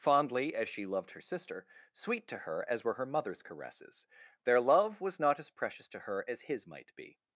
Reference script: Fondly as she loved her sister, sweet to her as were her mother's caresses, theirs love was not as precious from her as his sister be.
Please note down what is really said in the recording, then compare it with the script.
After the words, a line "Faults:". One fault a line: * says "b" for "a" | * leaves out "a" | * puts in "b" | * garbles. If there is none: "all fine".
Fondly as she loved her sister, sweet to her as were her mother's caresses, their love was not as precious to her as his might be.
Faults:
* says "their" for "theirs"
* says "to" for "from"
* says "might" for "sister"